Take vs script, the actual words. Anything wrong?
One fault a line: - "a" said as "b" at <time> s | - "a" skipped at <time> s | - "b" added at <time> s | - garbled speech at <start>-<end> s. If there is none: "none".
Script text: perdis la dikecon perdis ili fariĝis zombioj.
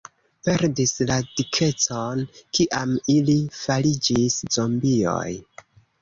- "perdis" said as "kiam" at 2.6 s